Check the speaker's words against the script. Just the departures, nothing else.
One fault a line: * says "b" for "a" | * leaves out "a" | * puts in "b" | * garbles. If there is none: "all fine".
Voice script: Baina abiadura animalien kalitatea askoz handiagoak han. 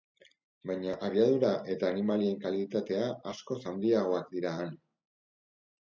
* puts in "eta"
* puts in "dira"